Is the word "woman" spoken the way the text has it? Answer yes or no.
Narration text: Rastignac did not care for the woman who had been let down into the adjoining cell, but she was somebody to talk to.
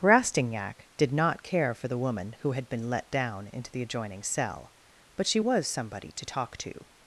yes